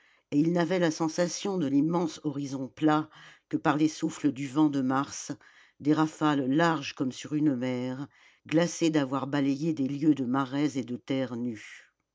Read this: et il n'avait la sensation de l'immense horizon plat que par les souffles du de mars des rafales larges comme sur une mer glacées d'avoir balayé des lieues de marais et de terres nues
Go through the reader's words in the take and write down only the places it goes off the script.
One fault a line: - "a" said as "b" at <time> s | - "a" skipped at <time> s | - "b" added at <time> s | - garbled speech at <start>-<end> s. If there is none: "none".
- "vent" added at 4.5 s